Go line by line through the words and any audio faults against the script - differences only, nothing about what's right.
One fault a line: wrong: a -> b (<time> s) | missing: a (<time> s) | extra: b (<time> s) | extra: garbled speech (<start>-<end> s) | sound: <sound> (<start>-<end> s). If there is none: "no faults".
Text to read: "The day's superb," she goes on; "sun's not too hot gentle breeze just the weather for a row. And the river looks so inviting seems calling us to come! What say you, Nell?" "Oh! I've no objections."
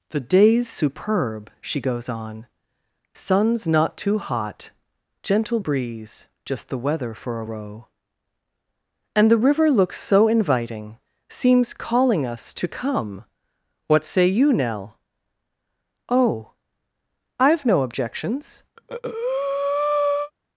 sound: breath (18.8-20.3 s)